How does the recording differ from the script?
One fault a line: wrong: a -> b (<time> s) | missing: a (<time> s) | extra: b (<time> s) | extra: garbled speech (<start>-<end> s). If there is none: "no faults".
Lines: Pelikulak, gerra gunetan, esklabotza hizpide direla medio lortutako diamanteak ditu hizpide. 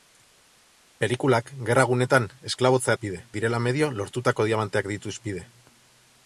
no faults